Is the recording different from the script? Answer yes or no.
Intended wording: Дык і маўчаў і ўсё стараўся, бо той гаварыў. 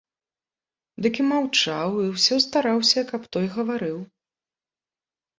yes